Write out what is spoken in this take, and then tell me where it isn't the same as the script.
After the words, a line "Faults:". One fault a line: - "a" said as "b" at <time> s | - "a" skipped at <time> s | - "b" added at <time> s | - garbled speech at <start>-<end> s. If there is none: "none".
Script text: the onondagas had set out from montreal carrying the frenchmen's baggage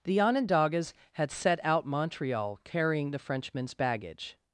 the onondagas had set out montreal carrying the frenchmen's baggage
Faults:
- "from" skipped at 1.9 s